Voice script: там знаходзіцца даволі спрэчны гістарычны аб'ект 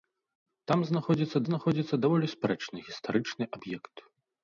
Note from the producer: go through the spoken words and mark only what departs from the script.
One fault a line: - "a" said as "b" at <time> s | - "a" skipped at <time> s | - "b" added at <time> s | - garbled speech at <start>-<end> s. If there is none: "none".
- "знаходзіцца" added at 1.5 s